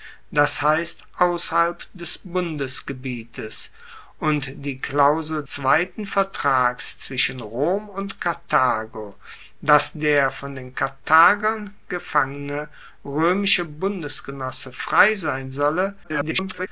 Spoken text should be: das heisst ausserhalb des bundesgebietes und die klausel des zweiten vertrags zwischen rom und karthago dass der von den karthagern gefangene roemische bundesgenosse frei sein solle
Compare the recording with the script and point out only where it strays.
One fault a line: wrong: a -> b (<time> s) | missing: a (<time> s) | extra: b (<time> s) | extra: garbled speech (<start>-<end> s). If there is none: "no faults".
missing: des (5.5 s)
extra: garbled speech (16.0-16.7 s)